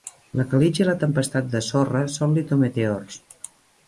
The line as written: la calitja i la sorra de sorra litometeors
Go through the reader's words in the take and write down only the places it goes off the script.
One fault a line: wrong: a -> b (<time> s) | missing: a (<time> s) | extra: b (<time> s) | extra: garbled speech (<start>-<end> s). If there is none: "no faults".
wrong: sorra -> tempestat (1.0 s)
extra: són (2.1 s)